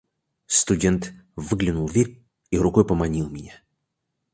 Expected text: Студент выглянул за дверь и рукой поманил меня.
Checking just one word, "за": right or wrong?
wrong